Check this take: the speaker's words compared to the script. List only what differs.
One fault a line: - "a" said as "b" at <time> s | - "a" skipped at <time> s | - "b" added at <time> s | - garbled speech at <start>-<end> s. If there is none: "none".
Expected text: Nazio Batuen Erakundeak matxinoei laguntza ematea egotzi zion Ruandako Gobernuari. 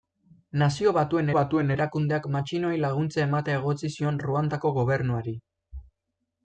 - "Batuen" added at 1.4 s